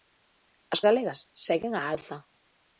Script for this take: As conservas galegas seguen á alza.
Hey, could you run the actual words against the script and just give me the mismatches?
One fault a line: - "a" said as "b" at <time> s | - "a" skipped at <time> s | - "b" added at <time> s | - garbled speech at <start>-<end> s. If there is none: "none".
- "conservas" skipped at 0.8 s